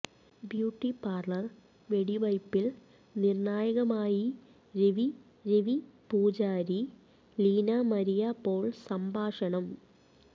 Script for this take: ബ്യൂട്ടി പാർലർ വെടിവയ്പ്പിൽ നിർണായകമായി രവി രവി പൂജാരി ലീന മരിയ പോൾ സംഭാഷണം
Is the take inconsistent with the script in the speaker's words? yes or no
no